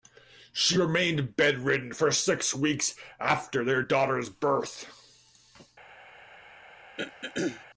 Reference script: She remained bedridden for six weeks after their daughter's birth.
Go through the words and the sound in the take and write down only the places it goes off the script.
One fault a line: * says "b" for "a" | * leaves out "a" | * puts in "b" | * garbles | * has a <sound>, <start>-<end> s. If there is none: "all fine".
* has a throat clearing, 7.0-7.7 s